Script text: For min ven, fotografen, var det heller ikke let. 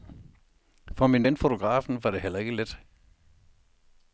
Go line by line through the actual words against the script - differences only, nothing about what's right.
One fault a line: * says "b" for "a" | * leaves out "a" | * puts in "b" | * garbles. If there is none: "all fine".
all fine